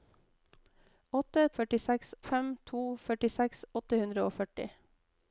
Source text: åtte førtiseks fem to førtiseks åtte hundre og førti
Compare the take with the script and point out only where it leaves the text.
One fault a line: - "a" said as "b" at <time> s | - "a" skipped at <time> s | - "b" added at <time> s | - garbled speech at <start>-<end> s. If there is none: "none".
none